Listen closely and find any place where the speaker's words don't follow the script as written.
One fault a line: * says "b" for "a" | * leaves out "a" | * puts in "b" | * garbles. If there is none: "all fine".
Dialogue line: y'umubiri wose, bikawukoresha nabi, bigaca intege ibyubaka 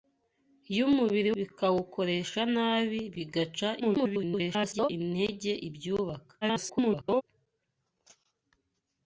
* leaves out "wose"
* garbles
* garbles